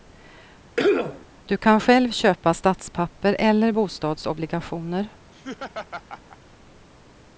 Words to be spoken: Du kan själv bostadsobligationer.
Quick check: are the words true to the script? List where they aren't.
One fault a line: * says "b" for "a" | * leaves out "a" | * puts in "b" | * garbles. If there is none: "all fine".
* puts in "köpa statspapper eller"